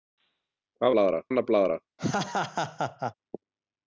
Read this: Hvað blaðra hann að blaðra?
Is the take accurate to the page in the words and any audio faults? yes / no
no